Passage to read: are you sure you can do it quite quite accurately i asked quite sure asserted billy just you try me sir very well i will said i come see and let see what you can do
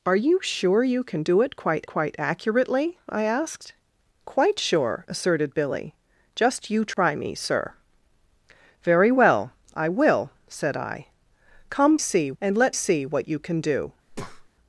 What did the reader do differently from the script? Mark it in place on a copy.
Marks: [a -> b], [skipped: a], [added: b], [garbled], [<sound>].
are you sure you can do it quite quite accurately i asked quite sure asserted billy just you try [dropout] me sir very well i will said i come see and let see what you can do [breath]